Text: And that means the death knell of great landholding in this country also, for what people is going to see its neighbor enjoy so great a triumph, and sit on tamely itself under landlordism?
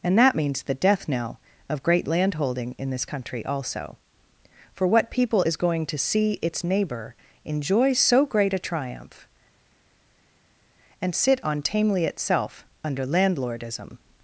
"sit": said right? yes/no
yes